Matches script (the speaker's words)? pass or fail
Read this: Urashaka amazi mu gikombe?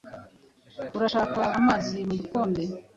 pass